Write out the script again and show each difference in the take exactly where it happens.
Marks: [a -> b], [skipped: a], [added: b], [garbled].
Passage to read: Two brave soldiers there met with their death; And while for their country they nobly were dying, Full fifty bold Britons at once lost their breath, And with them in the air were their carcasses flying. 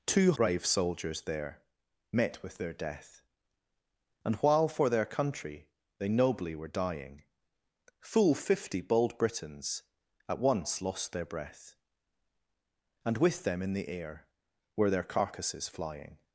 Two brave soldiers there met with their death; And while for their country they nobly were dying, Full fifty bold Britons at once lost their breath, And with them in the air were their carcasses flying.